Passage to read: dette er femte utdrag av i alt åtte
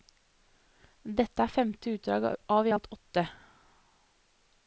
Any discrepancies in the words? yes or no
no